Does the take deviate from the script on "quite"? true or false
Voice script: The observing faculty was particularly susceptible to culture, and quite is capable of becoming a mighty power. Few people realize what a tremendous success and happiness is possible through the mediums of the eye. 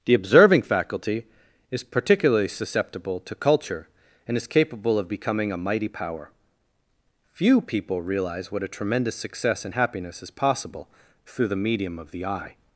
true